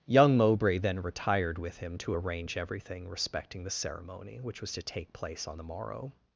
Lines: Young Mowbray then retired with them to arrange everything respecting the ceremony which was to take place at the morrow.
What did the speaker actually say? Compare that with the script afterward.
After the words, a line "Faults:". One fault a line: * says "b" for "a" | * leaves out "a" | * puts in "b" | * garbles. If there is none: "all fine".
Young Mowbray then retired with him to arrange everything respecting the ceremony which was to take place on the morrow.
Faults:
* says "him" for "them"
* says "on" for "at"